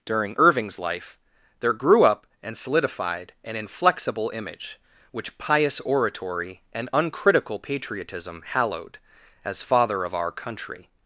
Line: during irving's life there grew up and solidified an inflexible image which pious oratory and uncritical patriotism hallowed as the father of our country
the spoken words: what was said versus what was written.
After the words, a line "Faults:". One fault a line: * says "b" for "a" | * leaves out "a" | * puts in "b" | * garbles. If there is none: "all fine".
during irving's life there grew up and solidified an inflexible image which pious oratory and uncritical patriotism hallowed as father of our country
Faults:
* leaves out "the"